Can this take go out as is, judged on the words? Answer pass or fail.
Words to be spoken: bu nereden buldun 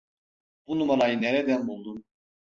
fail